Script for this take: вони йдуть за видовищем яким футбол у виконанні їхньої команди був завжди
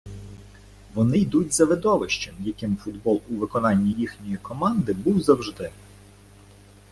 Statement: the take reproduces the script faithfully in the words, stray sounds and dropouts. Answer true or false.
true